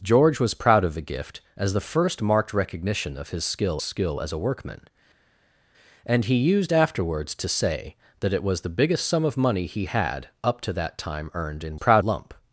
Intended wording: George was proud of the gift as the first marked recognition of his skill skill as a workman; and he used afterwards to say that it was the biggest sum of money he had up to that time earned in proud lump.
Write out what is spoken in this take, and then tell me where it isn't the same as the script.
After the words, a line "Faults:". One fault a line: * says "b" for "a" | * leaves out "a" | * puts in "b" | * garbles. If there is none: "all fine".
George was proud of the gift as the first marked recognition of his skill skill as a workman; and he used afterwards to say that it was the biggest sum of money he had up to that time earned in proud lump.
Faults:
all fine